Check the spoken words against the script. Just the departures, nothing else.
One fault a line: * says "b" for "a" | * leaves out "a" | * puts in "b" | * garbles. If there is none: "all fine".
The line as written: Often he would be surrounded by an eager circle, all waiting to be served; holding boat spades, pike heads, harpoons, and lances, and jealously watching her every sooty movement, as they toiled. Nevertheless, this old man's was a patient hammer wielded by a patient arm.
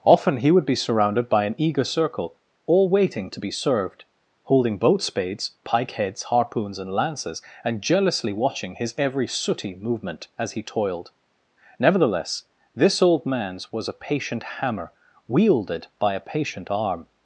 * says "his" for "her"
* says "he" for "they"